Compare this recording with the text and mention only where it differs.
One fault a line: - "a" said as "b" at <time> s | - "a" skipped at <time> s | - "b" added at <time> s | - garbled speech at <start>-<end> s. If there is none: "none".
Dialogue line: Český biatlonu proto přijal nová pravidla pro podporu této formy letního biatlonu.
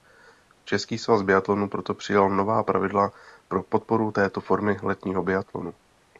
- "svaz" added at 1.0 s